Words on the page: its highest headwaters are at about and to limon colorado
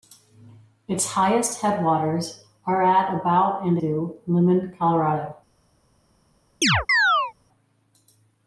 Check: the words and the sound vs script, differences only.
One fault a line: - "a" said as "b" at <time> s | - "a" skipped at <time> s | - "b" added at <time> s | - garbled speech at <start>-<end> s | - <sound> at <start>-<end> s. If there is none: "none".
- chirp at 6.6-7.3 s